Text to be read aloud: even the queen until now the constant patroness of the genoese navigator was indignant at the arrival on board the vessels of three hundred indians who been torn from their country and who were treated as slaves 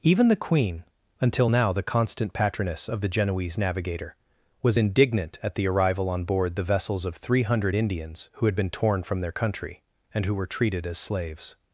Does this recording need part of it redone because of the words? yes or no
yes